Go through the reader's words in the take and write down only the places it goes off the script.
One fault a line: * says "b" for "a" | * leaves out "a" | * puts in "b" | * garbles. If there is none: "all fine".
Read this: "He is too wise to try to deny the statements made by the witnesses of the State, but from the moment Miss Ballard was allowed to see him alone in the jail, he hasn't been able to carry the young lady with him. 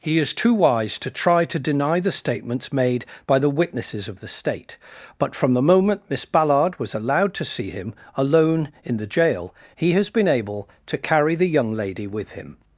* says "has" for "hasn't"